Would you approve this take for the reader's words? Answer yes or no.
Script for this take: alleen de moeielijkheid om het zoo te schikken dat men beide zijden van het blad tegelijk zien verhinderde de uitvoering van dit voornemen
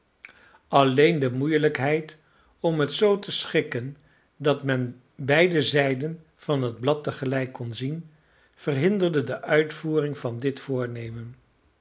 no